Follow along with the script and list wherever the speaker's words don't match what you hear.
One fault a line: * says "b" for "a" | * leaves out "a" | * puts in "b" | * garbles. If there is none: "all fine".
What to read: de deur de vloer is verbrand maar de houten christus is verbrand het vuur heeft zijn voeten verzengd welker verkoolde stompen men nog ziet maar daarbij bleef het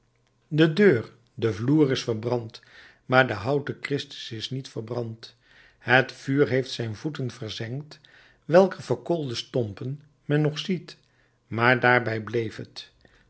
* puts in "niet"